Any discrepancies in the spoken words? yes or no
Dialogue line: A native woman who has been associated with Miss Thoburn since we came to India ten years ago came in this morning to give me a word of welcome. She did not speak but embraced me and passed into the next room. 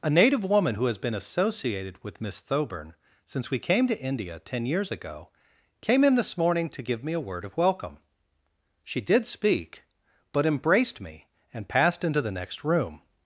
yes